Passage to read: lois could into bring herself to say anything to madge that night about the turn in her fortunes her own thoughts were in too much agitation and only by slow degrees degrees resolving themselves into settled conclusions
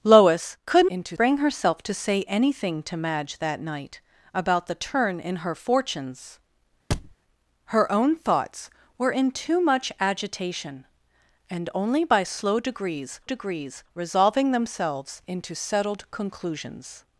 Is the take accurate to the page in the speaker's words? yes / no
yes